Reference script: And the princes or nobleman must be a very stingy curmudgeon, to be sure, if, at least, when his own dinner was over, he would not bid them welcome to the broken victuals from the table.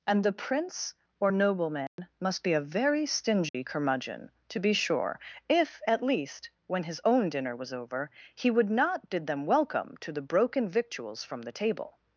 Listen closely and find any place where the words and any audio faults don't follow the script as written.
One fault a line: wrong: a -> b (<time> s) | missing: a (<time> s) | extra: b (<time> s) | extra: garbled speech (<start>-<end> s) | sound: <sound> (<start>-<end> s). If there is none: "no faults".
wrong: princes -> prince (0.3 s)
sound: dropout (1.9-2.0 s)
sound: dropout (3.5-3.5 s)